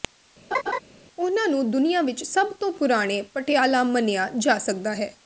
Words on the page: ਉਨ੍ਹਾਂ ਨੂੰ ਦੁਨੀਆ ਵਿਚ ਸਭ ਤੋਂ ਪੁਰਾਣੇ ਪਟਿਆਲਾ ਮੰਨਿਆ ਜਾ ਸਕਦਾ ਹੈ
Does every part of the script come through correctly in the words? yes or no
yes